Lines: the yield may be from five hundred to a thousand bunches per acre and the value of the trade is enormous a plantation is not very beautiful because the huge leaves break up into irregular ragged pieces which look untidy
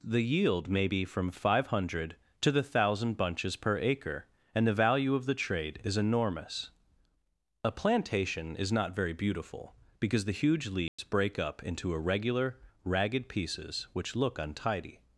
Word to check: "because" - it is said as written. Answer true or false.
true